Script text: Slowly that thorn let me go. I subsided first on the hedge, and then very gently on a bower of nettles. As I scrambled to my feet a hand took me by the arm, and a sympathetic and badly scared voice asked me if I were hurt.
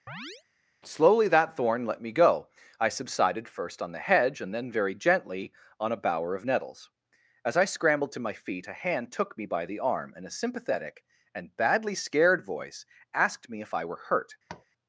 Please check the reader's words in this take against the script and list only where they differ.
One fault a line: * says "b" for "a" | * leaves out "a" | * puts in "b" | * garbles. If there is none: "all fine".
all fine